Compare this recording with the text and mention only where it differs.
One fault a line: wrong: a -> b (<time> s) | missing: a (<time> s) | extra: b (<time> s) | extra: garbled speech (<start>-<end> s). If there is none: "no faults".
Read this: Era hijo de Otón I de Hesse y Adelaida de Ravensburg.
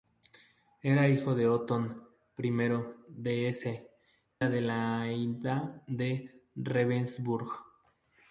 missing: y (3.9 s)